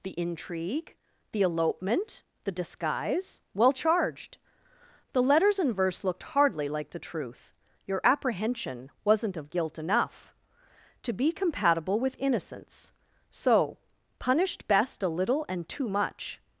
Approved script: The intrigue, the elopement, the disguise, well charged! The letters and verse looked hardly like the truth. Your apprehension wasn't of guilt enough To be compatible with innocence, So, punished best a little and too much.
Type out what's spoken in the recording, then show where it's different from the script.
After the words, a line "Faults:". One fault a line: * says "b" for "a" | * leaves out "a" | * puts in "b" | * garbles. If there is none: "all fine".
The intrigue, the elopement, the disguise, well charged! The letters and verse looked hardly like the truth. Your apprehension wasn't of guilt enough To be compatible with innocence, So, punished best a little and too much.
Faults:
all fine